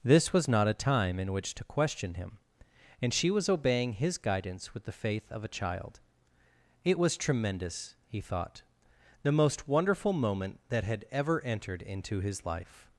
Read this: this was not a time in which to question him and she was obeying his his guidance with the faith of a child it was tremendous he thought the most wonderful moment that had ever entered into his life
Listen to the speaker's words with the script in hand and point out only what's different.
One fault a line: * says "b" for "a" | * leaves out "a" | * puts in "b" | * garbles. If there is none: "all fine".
* leaves out "his"